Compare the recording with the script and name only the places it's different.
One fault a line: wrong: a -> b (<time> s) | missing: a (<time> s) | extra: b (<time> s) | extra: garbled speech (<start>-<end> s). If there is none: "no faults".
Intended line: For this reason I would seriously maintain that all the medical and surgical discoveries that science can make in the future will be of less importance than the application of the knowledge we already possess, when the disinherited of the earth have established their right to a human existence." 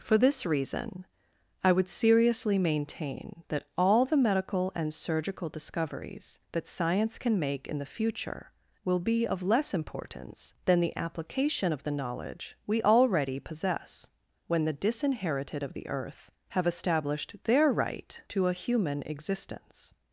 no faults